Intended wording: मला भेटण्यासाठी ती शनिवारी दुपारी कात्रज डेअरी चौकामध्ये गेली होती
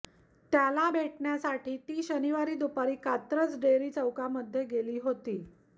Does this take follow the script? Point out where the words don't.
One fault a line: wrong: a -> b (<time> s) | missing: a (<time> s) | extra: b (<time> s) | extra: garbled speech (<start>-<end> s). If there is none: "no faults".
wrong: मला -> त्याला (0.5 s)